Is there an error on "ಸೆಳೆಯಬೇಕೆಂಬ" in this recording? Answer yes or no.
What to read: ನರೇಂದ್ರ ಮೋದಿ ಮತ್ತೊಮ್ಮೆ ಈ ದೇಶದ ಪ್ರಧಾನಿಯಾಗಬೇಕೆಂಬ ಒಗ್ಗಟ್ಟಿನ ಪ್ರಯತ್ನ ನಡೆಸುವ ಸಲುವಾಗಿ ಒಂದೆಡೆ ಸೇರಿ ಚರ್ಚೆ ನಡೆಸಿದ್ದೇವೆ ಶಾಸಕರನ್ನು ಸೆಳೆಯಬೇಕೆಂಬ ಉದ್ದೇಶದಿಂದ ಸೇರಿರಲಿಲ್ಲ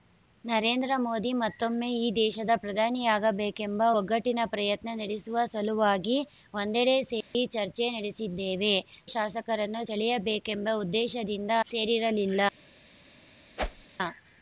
no